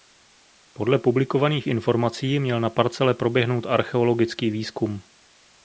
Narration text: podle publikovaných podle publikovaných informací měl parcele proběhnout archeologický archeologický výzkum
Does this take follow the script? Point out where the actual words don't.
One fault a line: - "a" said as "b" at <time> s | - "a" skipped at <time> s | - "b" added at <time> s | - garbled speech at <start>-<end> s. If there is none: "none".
- "podle publikovaných" skipped at 1.7 s
- "na" added at 2.6 s
- "archeologický" skipped at 4.5 s